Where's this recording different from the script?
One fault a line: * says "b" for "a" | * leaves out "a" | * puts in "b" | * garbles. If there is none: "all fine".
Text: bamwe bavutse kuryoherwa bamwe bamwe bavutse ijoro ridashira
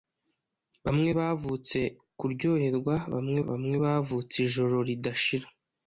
all fine